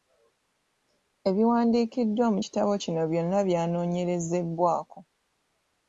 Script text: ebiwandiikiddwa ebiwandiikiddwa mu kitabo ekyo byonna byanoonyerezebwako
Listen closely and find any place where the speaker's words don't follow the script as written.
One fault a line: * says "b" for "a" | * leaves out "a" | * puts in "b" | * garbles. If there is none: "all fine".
* leaves out "ebiwandiikiddwa"
* says "kino" for "ekyo"